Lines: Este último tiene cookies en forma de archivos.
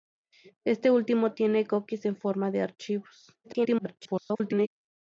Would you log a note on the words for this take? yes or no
yes